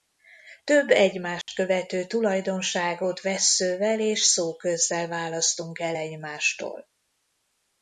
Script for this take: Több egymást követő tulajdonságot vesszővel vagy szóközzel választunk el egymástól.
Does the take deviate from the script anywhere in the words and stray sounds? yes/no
yes